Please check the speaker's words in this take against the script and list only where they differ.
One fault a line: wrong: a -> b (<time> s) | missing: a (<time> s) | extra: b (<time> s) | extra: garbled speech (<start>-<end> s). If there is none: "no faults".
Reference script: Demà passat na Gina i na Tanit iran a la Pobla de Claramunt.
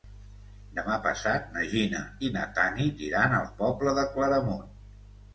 no faults